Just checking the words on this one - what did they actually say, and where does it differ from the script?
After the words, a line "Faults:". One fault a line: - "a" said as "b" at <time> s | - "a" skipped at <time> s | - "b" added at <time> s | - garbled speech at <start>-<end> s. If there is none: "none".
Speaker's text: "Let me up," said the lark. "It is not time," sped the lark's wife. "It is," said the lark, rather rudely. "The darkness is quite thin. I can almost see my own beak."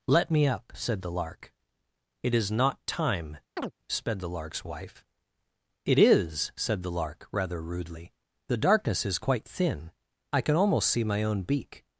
"Let me up," said the lark. "It is not time," sped the lark's wife. "It is," said the lark, rather rudely. "The darkness is quite thin. I can almost see my own beak."
Faults:
none